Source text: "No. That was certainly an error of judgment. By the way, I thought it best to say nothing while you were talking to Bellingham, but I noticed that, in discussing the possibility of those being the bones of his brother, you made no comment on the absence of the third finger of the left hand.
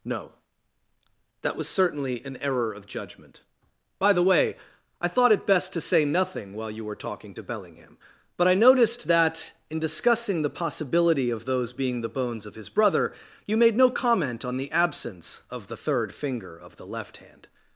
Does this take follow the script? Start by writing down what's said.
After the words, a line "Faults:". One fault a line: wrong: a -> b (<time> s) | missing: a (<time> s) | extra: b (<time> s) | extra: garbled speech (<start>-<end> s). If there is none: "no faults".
"No. That was certainly an error of judgment. By the way, I thought it best to say nothing while you were talking to Bellingham, but I noticed that, in discussing the possibility of those being the bones of his brother, you made no comment on the absence of the third finger of the left hand.
Faults:
no faults